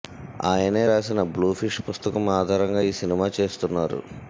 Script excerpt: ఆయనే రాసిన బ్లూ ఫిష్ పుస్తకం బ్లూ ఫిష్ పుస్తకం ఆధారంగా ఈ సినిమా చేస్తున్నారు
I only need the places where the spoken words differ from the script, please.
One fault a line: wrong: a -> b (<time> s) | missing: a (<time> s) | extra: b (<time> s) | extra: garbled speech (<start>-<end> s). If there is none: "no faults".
missing: బ్లూ ఫిష్ పుస్తకం (2.3 s)